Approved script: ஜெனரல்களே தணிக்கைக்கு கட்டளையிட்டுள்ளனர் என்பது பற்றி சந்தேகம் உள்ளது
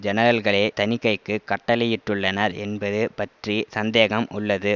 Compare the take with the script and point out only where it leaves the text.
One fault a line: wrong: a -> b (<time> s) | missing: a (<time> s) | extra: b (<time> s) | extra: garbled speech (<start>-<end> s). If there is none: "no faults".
no faults